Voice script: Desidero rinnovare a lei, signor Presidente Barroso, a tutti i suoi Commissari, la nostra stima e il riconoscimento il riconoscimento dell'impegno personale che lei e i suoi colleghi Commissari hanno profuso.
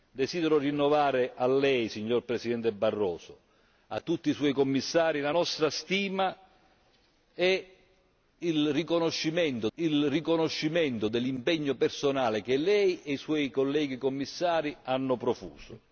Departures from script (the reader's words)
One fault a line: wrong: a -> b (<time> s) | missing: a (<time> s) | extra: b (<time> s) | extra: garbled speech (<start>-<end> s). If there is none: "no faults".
no faults